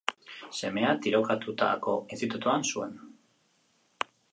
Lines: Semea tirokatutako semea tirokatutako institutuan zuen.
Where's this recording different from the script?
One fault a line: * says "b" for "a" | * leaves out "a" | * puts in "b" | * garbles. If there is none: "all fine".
* leaves out "semea tirokatutako"